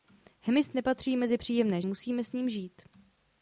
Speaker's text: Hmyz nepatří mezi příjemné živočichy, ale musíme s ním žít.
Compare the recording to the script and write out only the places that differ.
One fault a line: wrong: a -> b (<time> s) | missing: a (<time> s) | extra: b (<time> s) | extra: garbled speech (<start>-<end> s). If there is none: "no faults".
missing: živočichy ale (1.8 s)